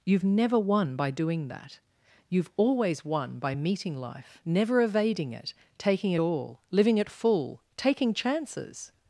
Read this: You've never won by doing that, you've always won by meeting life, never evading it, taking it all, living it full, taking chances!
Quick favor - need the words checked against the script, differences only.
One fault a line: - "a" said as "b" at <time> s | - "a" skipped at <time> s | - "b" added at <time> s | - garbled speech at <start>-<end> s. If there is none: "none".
none